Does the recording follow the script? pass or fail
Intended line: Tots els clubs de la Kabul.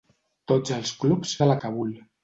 pass